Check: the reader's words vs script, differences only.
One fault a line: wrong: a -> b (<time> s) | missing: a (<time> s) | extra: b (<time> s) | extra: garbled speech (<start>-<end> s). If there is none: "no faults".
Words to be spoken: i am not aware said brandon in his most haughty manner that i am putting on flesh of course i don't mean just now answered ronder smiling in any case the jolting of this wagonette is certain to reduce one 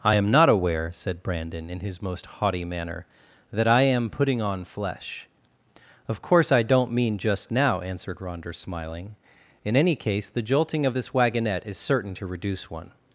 no faults